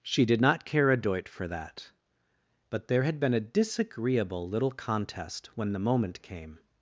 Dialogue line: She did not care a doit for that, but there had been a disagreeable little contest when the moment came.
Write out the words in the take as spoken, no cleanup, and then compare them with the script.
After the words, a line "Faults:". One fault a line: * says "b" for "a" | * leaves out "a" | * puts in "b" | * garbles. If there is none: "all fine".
She did not care a doit for that, but there had been a disagreeable little contest when the moment came.
Faults:
all fine